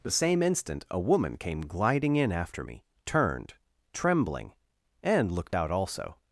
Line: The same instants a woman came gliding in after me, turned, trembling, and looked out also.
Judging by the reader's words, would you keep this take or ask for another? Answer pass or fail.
fail